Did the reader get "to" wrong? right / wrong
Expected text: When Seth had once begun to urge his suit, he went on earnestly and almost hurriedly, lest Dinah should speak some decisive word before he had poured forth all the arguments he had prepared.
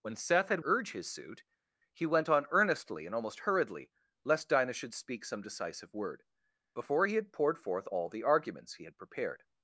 wrong